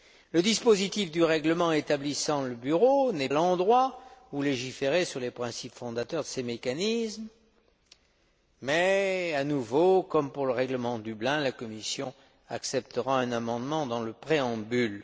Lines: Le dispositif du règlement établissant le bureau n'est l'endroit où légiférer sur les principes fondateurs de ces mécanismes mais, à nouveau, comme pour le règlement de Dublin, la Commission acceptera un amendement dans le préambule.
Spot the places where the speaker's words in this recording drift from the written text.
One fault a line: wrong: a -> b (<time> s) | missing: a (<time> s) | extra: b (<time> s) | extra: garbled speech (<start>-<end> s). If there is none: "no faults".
no faults